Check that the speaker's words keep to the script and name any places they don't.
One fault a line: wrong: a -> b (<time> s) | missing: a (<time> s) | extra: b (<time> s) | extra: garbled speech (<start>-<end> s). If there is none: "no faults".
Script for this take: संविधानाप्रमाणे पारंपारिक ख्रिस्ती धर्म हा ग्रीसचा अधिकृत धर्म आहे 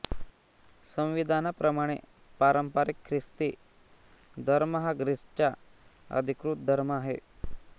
no faults